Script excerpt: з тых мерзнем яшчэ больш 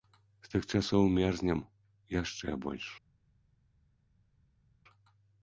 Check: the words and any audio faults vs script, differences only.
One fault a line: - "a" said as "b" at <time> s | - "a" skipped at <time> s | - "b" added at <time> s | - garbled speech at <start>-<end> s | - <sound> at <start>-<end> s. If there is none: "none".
- "часоў" added at 0.7 s